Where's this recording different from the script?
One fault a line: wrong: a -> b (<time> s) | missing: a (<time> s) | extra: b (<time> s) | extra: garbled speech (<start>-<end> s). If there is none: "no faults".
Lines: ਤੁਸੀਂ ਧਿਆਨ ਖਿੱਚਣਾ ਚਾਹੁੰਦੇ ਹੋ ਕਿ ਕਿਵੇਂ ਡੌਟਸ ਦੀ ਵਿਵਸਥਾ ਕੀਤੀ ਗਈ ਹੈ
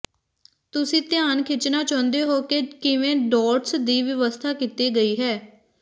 no faults